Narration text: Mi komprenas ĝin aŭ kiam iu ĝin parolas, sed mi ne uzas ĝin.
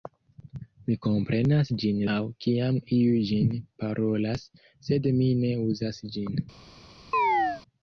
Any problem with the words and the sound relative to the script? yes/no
yes